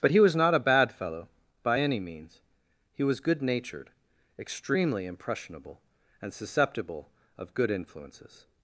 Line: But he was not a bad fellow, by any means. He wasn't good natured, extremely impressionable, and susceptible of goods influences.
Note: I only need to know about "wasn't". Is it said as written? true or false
false